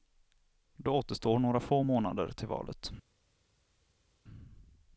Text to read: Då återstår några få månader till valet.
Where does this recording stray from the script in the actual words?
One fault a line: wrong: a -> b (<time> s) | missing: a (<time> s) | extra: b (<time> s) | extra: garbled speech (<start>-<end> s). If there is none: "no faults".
no faults